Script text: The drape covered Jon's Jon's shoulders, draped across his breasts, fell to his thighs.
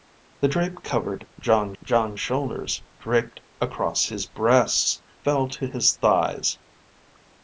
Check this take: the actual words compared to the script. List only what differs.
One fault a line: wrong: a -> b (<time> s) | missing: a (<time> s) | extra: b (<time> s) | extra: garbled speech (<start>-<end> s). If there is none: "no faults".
no faults